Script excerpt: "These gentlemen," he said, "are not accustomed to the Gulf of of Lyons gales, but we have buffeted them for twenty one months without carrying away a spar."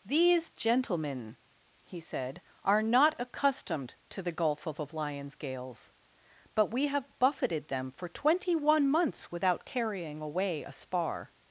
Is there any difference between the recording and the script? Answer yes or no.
no